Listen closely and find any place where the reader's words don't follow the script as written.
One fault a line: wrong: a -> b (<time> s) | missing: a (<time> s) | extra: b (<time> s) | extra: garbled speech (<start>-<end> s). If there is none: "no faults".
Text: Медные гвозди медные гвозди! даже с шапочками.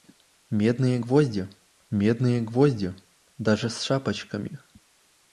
no faults